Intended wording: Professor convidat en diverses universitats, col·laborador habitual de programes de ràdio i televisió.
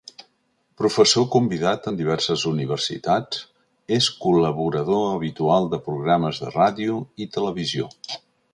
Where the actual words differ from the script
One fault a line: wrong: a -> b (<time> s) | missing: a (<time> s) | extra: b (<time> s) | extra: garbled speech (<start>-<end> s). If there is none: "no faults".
extra: és (4.0 s)